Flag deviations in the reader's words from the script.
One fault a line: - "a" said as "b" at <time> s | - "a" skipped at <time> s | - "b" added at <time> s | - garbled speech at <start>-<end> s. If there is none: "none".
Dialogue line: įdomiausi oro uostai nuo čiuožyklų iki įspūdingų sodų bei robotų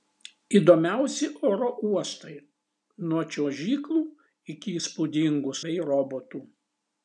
- "sodų" skipped at 5.6 s